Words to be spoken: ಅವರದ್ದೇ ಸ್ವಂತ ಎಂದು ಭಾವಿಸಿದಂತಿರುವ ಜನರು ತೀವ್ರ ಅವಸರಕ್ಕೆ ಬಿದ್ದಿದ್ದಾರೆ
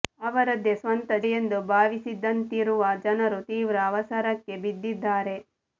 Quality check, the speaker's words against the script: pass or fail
pass